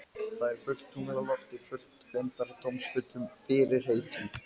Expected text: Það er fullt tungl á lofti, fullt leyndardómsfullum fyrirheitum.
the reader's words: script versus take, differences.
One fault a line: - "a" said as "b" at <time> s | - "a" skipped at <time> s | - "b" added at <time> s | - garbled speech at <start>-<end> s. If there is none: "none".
none